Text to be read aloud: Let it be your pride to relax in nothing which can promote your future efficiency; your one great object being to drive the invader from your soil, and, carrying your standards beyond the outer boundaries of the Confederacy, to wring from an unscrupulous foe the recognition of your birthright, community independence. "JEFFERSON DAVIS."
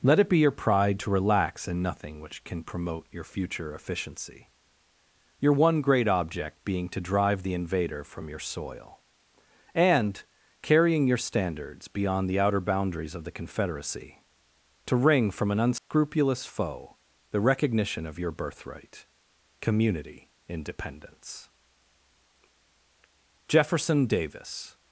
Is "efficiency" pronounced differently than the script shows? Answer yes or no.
no